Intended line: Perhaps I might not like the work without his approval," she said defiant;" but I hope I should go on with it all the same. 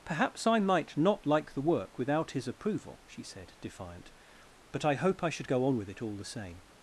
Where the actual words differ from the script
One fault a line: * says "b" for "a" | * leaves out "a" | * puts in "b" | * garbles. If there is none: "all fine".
all fine